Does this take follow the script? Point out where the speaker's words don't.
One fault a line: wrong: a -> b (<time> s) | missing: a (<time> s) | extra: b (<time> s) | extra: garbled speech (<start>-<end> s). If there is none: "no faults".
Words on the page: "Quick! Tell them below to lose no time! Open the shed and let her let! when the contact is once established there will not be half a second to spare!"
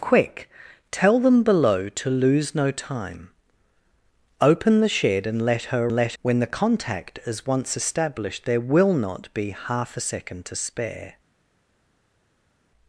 no faults